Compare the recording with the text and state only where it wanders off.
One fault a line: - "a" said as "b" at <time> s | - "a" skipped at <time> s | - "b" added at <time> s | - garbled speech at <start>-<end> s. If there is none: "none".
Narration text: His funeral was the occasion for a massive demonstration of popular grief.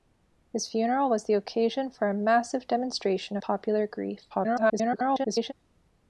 - "of" skipped at 3.4 s
- garbled speech at 4.3-5.5 s